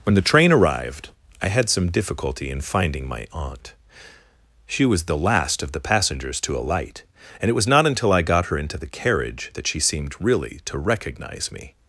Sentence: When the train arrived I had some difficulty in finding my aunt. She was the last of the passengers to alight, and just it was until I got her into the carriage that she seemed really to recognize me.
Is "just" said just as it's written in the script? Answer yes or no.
no